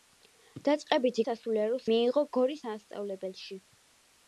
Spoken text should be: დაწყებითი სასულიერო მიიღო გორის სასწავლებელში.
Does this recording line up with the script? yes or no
yes